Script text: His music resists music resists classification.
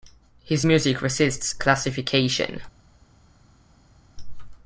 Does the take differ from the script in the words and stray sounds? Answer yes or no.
yes